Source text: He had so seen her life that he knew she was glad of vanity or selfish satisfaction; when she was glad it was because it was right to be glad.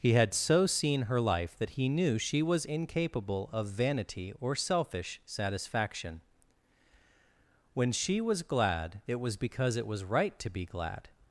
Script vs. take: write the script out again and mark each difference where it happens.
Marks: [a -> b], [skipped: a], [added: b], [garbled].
He had so seen her life that he knew she was [glad -> incapable] of vanity or selfish satisfaction; when she was glad it was because it was right to be glad.